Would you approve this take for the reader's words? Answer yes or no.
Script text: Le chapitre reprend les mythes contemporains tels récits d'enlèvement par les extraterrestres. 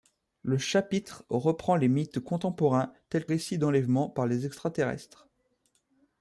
yes